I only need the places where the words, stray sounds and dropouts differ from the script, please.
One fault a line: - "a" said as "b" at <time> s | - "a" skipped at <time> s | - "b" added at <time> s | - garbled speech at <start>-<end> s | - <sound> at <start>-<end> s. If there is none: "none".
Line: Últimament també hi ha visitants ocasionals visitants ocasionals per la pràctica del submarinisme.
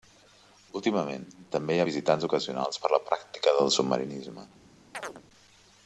- "visitants ocasionals" skipped at 2.8 s
- chirp at 4.9-5.2 s